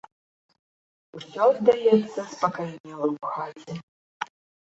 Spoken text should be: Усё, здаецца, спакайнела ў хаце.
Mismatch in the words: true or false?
false